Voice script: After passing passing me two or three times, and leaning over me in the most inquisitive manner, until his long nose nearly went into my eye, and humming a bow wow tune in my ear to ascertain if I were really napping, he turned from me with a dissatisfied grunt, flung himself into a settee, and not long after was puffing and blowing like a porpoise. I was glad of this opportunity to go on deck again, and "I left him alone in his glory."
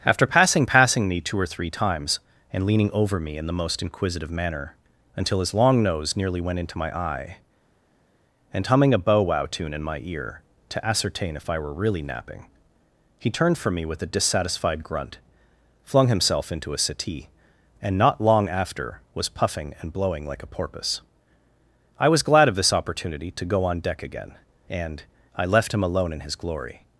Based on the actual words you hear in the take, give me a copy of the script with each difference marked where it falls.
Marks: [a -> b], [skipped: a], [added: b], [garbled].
After passing passing me two or three times, and leaning over me in the most inquisitive manner, until his long nose nearly went into my eye, and humming a bow wow tune in my ear to ascertain if I were really napping, he turned from me with a dissatisfied grunt, flung himself into a settee, and not long after was puffing and blowing like a porpoise. I was glad of this opportunity to go on deck again, and "I left him alone in his glory."